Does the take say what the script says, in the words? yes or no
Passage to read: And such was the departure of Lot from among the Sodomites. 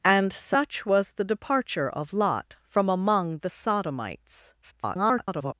no